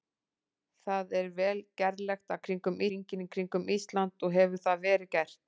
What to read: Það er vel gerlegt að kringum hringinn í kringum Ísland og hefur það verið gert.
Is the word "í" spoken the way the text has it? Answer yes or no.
yes